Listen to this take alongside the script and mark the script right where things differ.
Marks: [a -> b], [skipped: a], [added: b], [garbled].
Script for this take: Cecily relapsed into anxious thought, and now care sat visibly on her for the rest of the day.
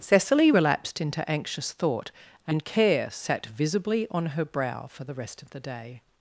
Cecily relapsed into anxious thought, and [skipped: now] care sat visibly on her [added: brow] for the rest of the day.